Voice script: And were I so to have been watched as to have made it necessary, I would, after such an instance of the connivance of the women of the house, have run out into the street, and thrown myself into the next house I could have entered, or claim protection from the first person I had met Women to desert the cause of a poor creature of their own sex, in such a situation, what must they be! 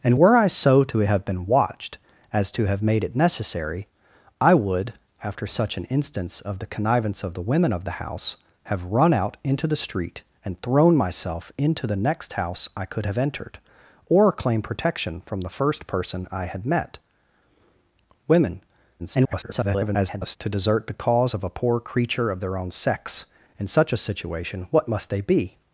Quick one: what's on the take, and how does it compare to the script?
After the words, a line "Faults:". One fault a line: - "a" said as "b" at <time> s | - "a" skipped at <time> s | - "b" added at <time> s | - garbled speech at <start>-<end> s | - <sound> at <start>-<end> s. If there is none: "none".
And were I so to have been watched as to have made it necessary, I would, after such an instance of the connivance of the women of the house, have run out into the street, and thrown myself into the next house I could have entered, or claim protection from the first person I had met Women [garbled] to desert the cause of a poor creature of their own sex, in such a situation, what must they be!
Faults:
- garbled speech at 19.0-20.4 s